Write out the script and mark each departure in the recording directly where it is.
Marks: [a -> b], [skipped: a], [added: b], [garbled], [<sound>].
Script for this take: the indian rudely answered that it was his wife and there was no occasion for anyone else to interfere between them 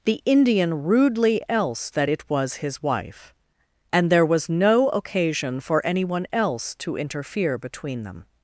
the indian rudely [answered -> else] that it was his wife and there was no occasion for anyone else to interfere between them